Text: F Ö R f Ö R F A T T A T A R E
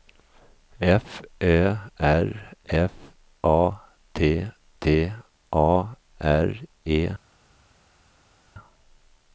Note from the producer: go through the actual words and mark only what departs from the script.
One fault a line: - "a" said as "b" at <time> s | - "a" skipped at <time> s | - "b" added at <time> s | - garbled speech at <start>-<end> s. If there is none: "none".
- "Ö R F" skipped at 2.9 s
- "T A" skipped at 6.0 s